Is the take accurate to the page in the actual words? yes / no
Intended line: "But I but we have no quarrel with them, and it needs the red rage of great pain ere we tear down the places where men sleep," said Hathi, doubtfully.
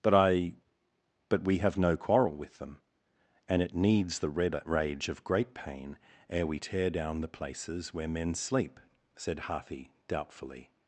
yes